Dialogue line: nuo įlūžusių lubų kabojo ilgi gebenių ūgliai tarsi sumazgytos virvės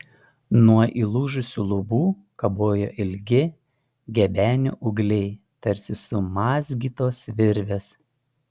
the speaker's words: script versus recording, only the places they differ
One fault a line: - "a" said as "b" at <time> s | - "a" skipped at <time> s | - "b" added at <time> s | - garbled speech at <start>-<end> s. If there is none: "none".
none